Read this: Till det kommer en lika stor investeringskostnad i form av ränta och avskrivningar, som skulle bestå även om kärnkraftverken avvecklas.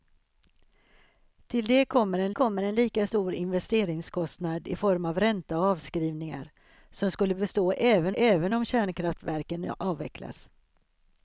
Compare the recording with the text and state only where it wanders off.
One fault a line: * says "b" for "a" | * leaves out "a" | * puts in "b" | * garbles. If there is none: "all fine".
* puts in "kommer en"
* puts in "även"